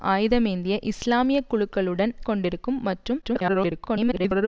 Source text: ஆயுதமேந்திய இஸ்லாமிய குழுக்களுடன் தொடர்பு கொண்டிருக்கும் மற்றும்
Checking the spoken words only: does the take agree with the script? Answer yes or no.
no